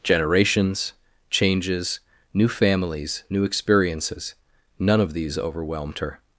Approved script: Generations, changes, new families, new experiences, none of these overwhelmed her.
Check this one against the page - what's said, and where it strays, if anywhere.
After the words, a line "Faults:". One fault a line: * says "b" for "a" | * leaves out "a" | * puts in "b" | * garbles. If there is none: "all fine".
Generations, changes, new families, new experiences, none of these overwhelmed her.
Faults:
all fine